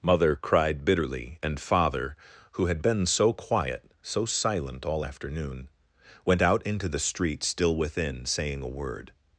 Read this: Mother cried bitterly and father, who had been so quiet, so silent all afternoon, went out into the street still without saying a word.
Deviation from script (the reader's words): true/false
true